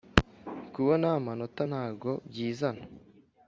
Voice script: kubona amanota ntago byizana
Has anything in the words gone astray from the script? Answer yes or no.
no